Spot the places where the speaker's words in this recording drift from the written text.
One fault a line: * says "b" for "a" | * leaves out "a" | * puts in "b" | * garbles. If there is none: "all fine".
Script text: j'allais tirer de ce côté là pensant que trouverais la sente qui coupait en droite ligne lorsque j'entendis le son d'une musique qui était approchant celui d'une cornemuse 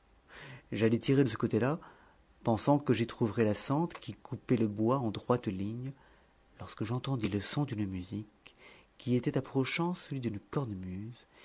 * puts in "j'y"
* puts in "le bois"